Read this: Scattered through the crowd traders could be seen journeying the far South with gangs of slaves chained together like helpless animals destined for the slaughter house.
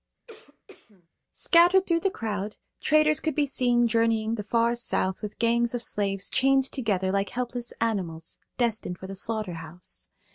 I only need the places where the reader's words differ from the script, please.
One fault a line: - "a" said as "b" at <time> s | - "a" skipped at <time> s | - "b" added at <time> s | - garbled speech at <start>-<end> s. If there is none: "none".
none